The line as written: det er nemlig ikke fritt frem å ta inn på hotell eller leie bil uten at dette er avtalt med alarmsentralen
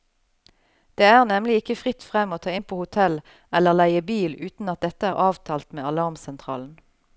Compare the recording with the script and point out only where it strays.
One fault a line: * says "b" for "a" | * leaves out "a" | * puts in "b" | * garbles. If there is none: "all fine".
all fine